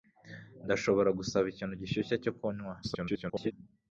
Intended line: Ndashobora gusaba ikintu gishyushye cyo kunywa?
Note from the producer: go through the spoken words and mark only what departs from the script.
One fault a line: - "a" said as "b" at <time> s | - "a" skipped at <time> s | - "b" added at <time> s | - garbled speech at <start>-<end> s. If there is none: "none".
- garbled speech at 2.8-3.5 s